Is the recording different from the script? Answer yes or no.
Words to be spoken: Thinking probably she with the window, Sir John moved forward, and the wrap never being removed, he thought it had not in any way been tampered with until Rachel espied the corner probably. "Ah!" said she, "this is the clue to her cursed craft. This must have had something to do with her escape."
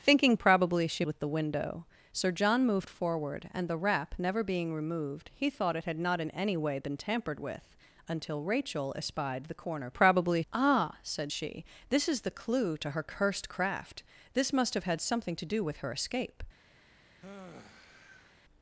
no